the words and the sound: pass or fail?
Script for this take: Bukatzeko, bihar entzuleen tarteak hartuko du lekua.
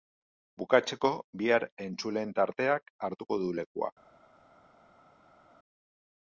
pass